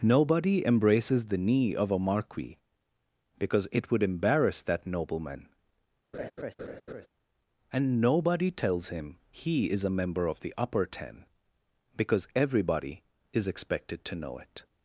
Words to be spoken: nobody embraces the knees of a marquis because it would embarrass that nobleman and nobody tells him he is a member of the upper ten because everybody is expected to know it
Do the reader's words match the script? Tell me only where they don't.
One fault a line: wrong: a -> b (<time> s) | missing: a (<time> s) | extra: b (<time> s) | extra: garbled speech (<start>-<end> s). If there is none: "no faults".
wrong: knees -> knee (1.4 s)